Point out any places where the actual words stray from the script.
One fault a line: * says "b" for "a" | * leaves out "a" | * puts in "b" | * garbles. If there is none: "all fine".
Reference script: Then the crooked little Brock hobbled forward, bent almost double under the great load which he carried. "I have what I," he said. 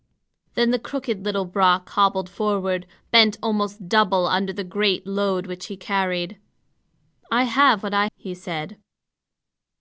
all fine